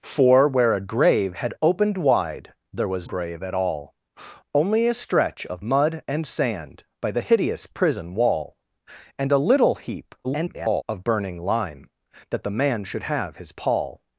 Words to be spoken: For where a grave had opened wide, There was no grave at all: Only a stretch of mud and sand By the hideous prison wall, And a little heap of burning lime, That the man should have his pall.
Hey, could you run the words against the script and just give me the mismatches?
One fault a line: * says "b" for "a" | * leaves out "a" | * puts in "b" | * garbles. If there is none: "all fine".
* leaves out "no"
* garbles